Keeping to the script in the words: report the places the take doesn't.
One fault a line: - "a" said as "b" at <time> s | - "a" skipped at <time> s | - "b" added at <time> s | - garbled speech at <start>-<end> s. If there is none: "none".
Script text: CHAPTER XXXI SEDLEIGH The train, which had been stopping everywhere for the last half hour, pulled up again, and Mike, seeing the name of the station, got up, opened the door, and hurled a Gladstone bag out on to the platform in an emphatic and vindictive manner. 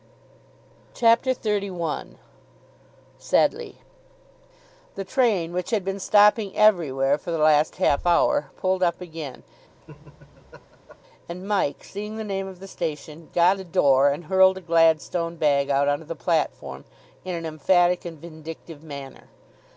- "up opened" skipped at 13.6 s